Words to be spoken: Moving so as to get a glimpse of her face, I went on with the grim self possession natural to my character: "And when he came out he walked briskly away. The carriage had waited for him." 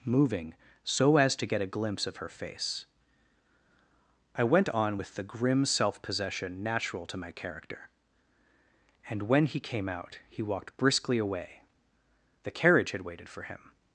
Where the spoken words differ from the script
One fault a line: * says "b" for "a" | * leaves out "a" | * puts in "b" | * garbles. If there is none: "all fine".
all fine